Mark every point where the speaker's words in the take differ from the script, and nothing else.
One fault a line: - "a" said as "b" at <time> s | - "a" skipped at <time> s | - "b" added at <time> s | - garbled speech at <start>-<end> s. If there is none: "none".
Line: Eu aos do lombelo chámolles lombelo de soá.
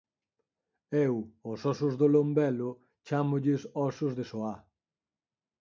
- "ósos" added at 1.7 s
- "lombelo" said as "ósos" at 3.9 s